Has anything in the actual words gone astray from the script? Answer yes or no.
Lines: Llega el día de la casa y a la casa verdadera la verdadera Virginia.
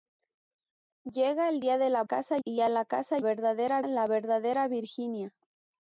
no